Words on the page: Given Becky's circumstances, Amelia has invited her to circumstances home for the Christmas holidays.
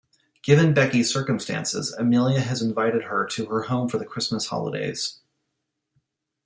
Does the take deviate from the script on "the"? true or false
false